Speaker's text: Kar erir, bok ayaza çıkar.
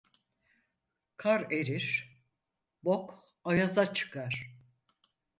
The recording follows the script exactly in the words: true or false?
true